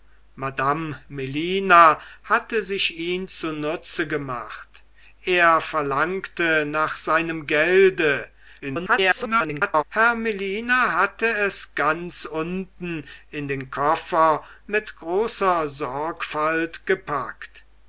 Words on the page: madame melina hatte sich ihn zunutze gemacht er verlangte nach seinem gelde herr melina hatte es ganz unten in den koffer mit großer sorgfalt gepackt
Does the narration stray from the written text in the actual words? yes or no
yes